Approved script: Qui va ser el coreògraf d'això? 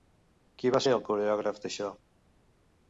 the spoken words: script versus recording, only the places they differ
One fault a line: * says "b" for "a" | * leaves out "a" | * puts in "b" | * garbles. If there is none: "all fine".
all fine